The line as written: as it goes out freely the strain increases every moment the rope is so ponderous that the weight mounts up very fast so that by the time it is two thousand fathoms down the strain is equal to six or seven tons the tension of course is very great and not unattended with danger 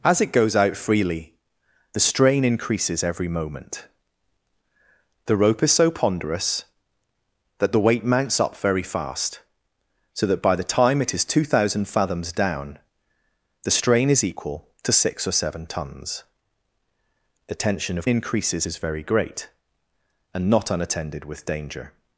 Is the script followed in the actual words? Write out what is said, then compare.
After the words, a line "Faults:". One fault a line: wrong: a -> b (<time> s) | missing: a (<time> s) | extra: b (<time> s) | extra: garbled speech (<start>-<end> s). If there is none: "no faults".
as it goes out freely the strain increases every moment the rope is so ponderous that the weight mounts up very fast so that by the time it is two thousand fathoms down the strain is equal to six or seven tons the tension of increases is very great and not unattended with danger
Faults:
wrong: course -> increases (18.1 s)